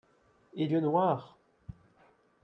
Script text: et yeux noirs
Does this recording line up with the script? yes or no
yes